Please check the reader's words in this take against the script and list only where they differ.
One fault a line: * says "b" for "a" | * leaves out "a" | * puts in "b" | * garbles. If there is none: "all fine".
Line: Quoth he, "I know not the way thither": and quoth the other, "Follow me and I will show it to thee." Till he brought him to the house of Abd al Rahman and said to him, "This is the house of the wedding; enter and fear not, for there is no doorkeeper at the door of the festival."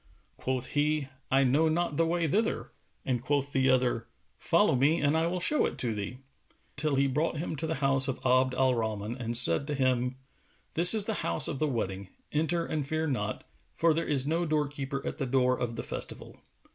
all fine